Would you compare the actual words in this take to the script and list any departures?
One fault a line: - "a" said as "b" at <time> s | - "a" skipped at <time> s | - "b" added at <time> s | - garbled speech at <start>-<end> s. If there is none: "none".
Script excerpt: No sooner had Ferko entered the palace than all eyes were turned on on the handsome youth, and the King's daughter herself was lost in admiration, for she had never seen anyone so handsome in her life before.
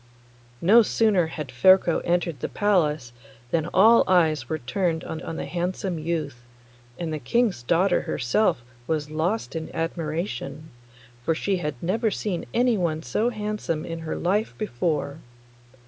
none